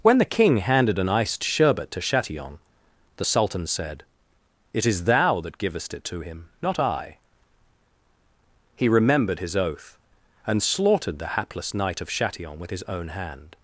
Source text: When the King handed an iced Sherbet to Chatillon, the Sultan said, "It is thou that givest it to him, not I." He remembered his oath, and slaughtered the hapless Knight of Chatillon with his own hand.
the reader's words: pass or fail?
pass